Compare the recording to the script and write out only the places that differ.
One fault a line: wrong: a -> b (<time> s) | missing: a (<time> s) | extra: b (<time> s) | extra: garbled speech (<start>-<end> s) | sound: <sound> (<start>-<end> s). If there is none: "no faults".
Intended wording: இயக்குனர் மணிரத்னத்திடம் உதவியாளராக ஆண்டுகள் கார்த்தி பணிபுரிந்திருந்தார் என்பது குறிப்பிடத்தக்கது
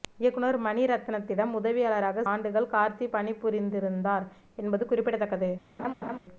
sound: laugh (5.8-6.2 s)